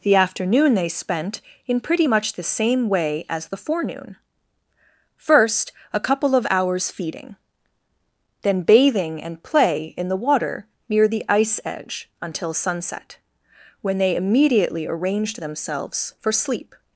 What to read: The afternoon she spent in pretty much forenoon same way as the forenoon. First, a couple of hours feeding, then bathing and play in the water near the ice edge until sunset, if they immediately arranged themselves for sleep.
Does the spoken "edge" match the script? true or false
true